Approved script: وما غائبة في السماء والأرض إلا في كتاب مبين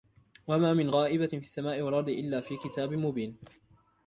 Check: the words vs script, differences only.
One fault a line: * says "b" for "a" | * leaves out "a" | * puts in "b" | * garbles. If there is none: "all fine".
* puts in "من"